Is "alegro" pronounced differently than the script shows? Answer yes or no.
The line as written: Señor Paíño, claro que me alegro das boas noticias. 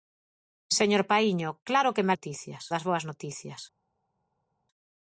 yes